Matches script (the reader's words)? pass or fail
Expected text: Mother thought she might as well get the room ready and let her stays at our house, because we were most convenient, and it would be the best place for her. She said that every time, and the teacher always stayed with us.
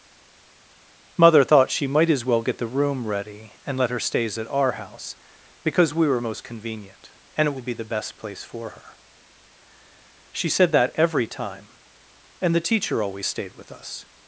pass